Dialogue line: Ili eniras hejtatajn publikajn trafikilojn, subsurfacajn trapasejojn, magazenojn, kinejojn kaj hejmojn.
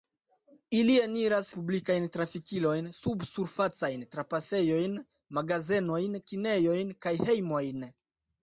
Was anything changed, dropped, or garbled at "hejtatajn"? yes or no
yes